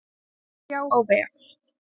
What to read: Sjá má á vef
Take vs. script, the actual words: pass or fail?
fail